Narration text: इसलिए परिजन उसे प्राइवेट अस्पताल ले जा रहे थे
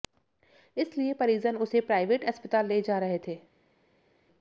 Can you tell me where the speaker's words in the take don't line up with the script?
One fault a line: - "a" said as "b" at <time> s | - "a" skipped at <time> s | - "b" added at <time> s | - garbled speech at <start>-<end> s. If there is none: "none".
none